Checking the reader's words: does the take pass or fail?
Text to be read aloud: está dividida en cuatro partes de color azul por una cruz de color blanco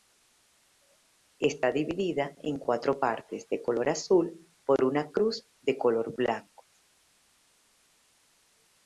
pass